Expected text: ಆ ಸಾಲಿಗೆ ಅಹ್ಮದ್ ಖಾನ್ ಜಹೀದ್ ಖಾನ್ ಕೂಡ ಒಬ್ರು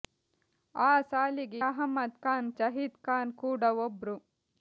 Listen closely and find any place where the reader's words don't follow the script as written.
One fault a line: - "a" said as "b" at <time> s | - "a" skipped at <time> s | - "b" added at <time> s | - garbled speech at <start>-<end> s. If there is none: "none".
none